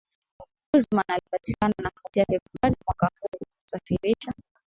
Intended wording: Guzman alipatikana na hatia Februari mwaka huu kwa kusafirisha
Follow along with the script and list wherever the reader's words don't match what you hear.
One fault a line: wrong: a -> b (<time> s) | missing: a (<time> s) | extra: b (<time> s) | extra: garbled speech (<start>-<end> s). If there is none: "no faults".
no faults